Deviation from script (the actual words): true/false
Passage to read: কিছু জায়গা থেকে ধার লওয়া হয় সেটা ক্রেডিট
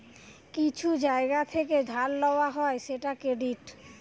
false